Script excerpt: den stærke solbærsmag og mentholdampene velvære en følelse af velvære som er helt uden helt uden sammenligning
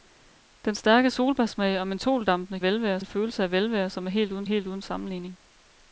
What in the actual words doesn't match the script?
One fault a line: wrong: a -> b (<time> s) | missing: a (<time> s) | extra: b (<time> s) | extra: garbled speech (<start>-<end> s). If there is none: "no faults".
no faults